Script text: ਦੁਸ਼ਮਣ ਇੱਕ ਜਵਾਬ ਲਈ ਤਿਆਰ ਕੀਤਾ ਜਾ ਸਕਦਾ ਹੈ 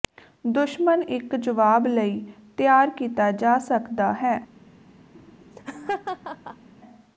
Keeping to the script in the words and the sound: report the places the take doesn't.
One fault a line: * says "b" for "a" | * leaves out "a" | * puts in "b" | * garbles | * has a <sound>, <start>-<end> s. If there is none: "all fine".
* has a laugh, 5.2-6.7 s